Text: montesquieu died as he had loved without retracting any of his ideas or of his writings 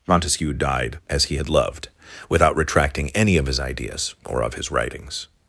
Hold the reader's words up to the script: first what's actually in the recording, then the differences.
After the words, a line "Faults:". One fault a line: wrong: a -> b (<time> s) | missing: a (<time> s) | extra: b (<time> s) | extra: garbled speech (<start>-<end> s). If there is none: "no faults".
montesquieu died as he had loved without retracting any of his ideas or of his writings
Faults:
no faults